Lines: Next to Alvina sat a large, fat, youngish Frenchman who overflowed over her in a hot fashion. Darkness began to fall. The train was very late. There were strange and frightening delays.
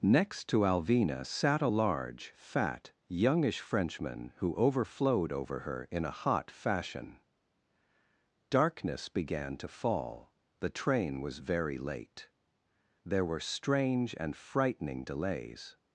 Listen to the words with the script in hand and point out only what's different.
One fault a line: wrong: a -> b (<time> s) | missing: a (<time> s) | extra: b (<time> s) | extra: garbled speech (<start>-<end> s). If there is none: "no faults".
no faults